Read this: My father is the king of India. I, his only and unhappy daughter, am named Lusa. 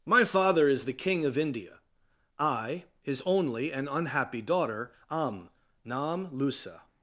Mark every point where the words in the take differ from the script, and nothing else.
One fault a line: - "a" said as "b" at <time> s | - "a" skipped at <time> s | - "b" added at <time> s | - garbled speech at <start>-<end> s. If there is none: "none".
- "named" said as "nam" at 5.8 s